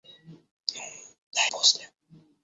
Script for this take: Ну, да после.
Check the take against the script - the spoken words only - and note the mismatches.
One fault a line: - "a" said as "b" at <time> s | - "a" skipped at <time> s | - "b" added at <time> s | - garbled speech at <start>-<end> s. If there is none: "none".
none